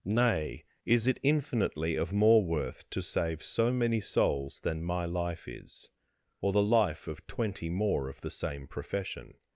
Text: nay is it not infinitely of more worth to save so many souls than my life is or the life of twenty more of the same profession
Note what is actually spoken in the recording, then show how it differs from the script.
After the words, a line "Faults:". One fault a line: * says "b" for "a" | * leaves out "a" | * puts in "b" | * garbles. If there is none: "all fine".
nay is it infinitely of more worth to save so many souls than my life is or the life of twenty more of the same profession
Faults:
* leaves out "not"